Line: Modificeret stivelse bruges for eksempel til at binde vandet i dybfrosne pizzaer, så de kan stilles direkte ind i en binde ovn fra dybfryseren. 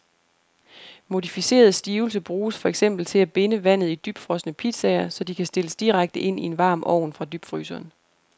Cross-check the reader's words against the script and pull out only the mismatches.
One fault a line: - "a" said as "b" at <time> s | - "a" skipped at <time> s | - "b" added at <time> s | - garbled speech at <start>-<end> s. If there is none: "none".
- "binde" said as "varm" at 6.6 s